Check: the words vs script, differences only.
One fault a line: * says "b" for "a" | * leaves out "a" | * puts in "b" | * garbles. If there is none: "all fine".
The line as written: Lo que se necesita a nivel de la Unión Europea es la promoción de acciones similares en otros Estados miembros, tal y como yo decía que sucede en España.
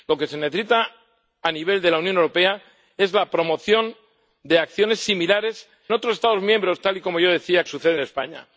* leaves out "en"
* leaves out "que"